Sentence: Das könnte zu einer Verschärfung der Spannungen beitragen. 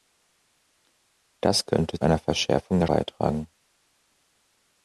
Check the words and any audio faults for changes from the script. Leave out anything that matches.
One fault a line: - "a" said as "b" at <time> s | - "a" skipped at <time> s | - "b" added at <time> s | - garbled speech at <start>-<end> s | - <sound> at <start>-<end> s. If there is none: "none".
- "zu" skipped at 2.0 s
- "Spannungen" skipped at 2.9 s